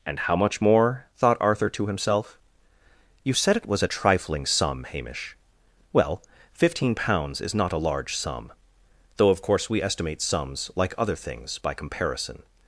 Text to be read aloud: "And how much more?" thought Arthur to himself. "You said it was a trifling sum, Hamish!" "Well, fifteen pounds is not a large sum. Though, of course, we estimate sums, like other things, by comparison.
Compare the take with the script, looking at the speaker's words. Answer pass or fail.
pass